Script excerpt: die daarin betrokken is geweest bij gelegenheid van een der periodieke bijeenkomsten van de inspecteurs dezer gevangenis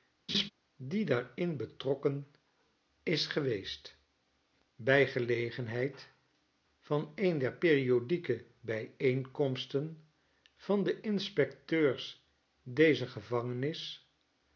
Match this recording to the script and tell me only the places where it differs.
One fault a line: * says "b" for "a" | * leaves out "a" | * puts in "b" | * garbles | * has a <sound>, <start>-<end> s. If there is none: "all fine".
* has a laugh, 0.3-0.5 s